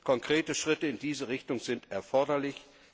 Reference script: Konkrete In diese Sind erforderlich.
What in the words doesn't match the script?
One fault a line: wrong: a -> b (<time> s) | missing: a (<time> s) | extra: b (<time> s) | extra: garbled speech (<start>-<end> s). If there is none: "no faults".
extra: Schritte (0.6 s)
extra: Richtung (1.3 s)